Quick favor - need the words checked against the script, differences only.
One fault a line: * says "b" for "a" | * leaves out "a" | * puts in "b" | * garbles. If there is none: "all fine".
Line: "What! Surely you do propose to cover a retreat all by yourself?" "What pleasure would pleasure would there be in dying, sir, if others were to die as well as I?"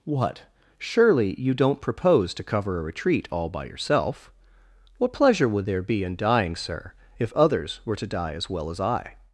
* says "don't" for "do"
* leaves out "pleasure would"